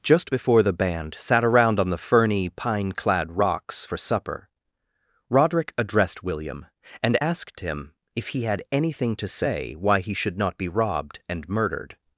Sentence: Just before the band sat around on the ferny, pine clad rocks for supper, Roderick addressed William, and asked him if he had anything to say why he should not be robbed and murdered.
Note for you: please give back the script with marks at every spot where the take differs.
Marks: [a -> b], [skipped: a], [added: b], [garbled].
Just before the band sat around on the ferny, pine clad rocks for supper, Roderick addressed William, and asked him if he had anything to say why he should not be robbed and murdered.